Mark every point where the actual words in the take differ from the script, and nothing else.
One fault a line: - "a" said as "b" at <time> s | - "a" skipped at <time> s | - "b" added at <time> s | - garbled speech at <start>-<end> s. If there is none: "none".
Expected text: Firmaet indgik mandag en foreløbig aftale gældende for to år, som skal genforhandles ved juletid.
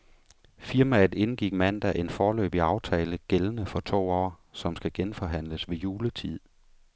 none